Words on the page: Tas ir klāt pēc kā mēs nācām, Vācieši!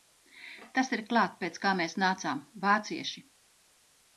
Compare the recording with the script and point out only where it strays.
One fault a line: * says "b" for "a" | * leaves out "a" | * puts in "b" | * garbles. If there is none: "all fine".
all fine